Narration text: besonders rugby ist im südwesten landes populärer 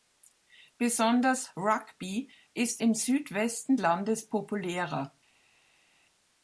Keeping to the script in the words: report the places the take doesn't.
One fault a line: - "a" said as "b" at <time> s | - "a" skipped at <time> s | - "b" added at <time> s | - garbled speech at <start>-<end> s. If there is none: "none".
none